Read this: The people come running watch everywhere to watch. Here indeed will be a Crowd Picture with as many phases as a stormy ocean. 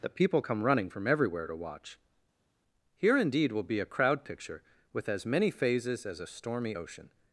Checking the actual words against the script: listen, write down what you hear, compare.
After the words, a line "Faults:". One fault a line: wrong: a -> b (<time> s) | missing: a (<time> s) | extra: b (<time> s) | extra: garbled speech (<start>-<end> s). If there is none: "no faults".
The people come running from everywhere to watch. Here indeed will be a Crowd Picture with as many phases as a stormy ocean.
Faults:
wrong: watch -> from (0.9 s)